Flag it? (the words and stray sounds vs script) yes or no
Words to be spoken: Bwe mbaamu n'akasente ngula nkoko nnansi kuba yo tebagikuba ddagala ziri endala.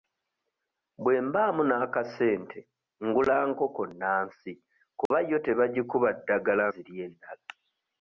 yes